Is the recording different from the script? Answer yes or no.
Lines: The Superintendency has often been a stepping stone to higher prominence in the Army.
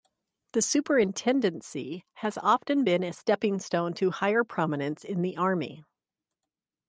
no